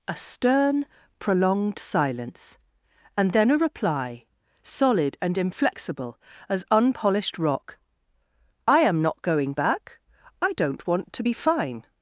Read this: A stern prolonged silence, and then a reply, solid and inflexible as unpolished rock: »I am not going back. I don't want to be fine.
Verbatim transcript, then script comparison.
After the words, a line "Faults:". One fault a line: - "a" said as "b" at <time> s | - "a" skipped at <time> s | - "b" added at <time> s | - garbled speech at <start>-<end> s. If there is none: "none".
A stern prolonged silence, and then a reply, solid and inflexible as unpolished rock: »I am not going back. I don't want to be fine.
Faults:
none